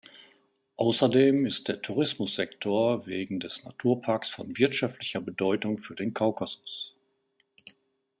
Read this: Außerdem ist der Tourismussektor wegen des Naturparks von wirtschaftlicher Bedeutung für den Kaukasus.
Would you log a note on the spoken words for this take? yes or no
no